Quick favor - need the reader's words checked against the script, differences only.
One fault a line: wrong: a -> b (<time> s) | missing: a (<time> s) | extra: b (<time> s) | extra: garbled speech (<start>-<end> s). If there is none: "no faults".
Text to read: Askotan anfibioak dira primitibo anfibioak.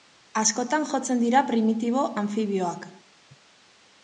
wrong: anfibioak -> jotzen (0.9 s)